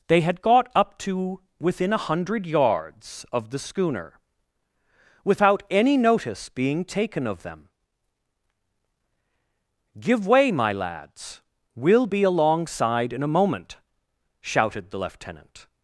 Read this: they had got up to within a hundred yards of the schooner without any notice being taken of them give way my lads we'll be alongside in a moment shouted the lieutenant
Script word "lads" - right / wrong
right